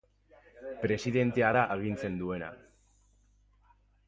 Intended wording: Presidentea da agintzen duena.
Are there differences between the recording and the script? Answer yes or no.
no